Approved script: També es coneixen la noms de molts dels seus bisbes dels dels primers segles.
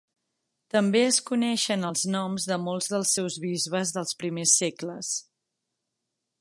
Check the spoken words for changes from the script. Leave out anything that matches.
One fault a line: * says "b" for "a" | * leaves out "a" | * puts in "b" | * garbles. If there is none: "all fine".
* says "els" for "la"
* leaves out "dels"